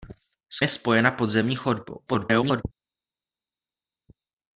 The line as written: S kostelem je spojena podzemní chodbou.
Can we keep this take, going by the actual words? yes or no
no